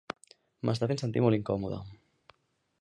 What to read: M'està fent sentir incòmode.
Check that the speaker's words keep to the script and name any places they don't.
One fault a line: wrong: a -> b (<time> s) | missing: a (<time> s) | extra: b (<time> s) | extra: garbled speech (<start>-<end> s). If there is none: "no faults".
extra: molt (1.2 s)